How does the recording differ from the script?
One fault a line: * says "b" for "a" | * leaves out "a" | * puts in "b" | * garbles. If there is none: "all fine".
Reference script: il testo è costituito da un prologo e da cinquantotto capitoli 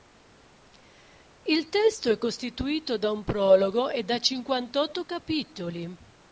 all fine